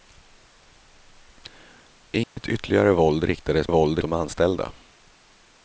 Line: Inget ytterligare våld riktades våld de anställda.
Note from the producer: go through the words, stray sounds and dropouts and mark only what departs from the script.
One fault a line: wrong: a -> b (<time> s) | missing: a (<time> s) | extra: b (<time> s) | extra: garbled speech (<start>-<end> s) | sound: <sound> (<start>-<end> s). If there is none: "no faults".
sound: dropout (2.2-2.4 s)